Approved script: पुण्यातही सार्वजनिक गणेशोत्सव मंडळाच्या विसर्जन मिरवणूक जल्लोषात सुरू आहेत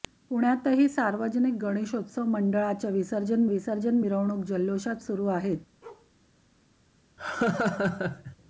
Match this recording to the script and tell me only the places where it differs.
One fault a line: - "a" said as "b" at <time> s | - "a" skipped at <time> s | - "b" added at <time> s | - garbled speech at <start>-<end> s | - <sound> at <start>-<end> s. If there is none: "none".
- "विसर्जन" added at 3.5 s
- bark at 5.8-6.1 s
- laugh at 7.2-8.4 s